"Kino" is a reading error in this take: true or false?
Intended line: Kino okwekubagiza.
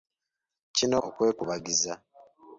false